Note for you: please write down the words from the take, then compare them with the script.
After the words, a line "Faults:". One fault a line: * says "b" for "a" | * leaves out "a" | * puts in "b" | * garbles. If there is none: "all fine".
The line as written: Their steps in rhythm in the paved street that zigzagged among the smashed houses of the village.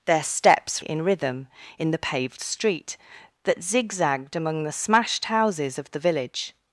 Their steps in rhythm in the paved street that zigzagged among the smashed houses of the village.
Faults:
all fine